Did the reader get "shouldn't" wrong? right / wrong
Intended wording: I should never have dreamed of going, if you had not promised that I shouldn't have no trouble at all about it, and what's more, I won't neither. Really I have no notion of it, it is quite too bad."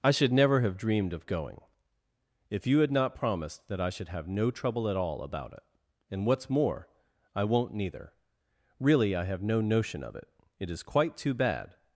wrong